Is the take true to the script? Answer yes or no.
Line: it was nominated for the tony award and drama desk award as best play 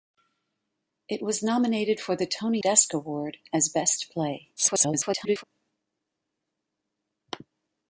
no